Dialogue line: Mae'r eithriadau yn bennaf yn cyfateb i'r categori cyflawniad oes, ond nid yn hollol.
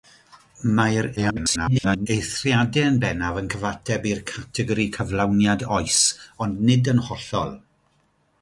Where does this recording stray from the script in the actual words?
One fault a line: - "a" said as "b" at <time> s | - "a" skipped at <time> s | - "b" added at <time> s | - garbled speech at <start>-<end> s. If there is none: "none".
- garbled speech at 1.2-2.1 s